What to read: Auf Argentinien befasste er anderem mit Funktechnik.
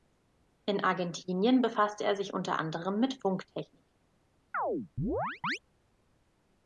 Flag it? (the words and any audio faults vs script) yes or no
yes